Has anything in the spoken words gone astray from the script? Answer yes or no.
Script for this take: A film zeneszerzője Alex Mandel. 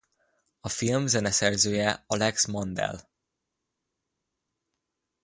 no